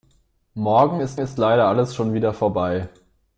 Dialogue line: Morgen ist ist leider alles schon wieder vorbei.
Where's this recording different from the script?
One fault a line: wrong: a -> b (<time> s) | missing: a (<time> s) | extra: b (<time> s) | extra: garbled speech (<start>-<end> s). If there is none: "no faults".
no faults